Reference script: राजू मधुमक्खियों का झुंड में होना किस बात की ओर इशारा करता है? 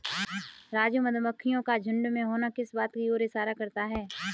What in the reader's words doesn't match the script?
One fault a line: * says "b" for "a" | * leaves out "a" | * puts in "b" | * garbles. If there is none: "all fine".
all fine